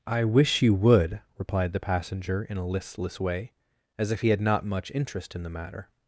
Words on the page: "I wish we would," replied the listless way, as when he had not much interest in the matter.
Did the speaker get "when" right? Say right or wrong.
wrong